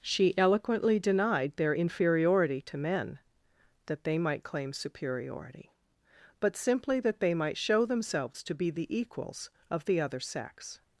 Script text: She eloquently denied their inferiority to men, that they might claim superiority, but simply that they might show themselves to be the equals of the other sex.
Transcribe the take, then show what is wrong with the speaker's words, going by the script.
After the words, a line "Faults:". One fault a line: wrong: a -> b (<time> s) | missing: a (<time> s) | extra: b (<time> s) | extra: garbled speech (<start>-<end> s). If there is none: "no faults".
She eloquently denied their inferiority to men, that they might claim superiority, but simply that they might show themselves to be the equals of the other sex.
Faults:
no faults